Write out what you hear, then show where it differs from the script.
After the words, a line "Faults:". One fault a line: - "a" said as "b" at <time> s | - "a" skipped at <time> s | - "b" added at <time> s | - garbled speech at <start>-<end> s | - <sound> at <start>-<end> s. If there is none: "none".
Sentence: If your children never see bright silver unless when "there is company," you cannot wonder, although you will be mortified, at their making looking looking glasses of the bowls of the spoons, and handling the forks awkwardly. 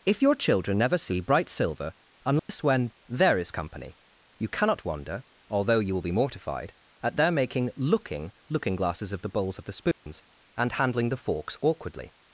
If your children never see bright silver unless when "there is company," you cannot wonder, although you will be mortified, at their making looking looking glasses of the bowls of the spoons, and handling the forks awkwardly.
Faults:
- dropout at 2.4-2.5 s
- dropout at 9.9-10.1 s